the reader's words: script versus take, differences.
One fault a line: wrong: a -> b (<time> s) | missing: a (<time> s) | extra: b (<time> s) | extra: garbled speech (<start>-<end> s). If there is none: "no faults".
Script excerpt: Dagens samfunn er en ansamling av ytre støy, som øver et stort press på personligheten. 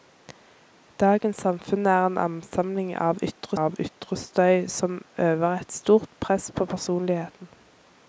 extra: av ytre (3.6 s)